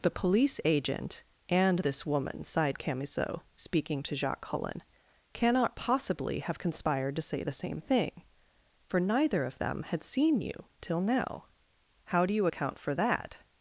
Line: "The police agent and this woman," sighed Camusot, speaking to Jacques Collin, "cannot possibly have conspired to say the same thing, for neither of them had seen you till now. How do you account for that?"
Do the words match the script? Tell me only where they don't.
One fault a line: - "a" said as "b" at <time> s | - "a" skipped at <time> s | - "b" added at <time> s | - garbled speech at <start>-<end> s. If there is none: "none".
none